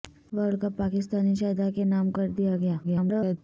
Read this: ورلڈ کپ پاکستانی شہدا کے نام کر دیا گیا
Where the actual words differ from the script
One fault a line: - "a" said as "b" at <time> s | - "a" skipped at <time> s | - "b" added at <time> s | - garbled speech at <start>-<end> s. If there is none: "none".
- garbled speech at 2.8-3.4 s